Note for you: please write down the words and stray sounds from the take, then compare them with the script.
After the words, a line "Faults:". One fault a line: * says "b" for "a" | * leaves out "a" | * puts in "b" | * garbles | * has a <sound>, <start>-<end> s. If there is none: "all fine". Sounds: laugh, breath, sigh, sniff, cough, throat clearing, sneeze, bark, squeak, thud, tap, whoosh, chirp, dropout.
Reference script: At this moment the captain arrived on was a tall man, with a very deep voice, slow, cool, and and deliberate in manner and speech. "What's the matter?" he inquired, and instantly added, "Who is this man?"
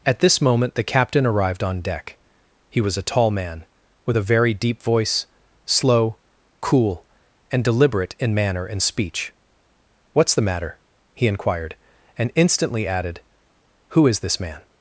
At this moment the captain arrived on deck. He was a tall man, with a very deep voice, slow, cool, and deliberate in manner and speech. "What's the matter?" he inquired, and instantly added, "Who is this man?"
Faults:
* puts in "deck He"
* leaves out "and"